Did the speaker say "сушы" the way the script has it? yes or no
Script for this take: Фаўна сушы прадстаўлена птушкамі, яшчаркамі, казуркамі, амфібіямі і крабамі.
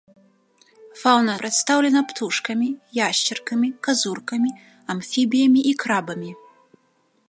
no